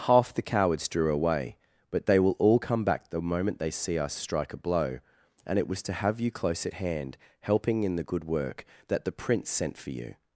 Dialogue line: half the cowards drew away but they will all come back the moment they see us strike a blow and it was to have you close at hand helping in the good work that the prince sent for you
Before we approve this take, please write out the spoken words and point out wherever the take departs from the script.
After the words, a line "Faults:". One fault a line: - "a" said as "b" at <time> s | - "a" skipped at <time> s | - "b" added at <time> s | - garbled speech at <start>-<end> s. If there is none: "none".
half the cowards drew away but they will all come back the moment they see us strike a blow and it was to have you close at hand helping in the good work that the prince sent for you
Faults:
none